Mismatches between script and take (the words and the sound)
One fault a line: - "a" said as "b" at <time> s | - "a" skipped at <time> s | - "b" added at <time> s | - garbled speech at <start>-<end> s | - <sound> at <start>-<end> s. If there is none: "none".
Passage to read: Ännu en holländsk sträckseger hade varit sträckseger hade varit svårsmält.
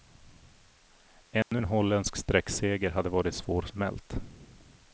- dropout at 1.4-1.5 s
- "sträckseger hade varit" skipped at 3.3 s